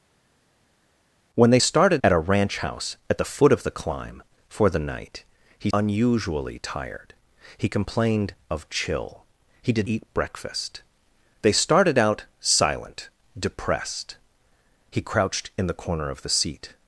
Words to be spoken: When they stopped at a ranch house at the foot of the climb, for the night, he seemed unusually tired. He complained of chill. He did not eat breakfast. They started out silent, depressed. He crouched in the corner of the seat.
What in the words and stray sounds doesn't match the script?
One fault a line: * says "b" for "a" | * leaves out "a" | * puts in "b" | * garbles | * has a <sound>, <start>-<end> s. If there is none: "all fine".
* says "started" for "stopped"
* leaves out "seemed"
* leaves out "not"